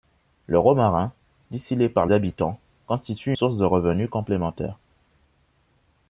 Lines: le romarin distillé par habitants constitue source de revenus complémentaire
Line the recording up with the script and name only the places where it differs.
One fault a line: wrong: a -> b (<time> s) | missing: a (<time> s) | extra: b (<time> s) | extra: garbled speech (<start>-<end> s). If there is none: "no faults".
no faults